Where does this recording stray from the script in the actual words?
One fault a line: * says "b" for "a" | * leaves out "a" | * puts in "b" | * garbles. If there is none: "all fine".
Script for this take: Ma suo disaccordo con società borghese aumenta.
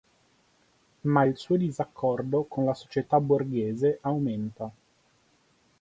* puts in "il"
* puts in "la"